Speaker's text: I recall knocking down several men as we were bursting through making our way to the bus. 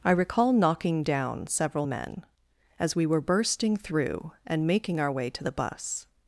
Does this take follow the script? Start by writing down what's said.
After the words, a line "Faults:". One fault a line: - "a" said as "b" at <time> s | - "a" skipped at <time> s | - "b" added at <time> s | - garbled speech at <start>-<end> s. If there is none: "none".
I recall knocking down several men as we were bursting through and making our way to the bus.
Faults:
- "and" added at 4.5 s